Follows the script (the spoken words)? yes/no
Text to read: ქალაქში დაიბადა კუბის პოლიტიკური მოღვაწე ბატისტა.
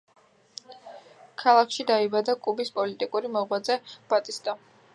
yes